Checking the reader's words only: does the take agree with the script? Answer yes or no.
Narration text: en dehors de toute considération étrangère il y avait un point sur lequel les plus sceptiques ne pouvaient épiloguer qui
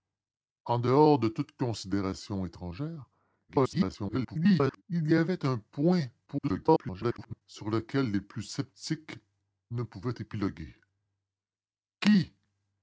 no